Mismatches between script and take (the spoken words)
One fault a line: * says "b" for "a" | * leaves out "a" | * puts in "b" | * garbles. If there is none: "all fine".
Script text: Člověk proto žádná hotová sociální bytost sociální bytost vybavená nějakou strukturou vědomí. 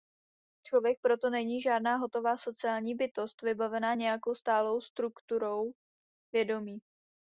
* puts in "není"
* leaves out "sociální bytost"
* puts in "stálou"